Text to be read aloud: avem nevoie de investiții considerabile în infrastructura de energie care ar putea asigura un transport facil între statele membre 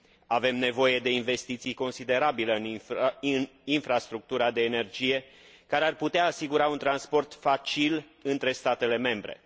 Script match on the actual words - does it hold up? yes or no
yes